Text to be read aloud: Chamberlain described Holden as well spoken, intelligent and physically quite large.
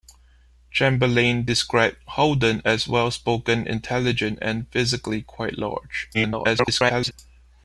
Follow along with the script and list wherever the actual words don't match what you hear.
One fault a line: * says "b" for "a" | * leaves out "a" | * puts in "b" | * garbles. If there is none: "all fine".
* garbles